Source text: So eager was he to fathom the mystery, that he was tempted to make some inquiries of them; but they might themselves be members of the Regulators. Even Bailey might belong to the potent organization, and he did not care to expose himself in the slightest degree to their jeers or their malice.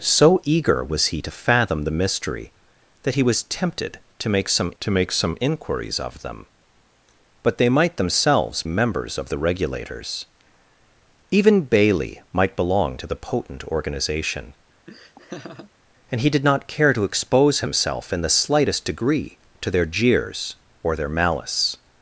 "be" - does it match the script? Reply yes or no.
no